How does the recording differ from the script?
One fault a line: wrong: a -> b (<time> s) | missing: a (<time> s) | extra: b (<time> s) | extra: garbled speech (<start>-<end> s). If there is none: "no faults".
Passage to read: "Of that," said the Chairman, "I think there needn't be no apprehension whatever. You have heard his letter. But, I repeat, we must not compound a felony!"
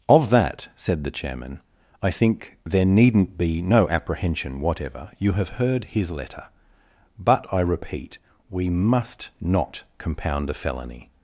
no faults